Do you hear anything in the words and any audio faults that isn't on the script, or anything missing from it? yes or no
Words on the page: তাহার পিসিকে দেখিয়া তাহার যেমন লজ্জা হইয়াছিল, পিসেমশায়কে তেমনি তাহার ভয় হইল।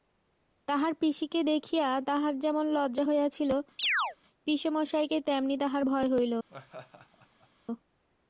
yes